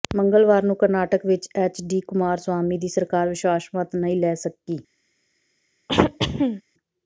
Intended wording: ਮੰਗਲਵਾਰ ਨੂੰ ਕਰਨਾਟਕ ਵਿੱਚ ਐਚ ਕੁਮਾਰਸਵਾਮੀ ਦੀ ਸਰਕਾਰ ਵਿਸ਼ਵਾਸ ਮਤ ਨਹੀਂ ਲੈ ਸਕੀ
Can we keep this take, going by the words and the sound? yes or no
no